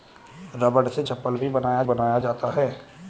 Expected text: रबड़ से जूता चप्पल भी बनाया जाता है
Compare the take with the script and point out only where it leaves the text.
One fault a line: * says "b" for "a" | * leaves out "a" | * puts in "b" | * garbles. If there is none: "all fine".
* leaves out "जूता"
* puts in "बनाया"